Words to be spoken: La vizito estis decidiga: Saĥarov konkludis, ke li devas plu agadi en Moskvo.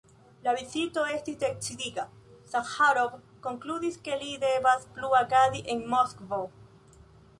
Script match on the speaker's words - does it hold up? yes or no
yes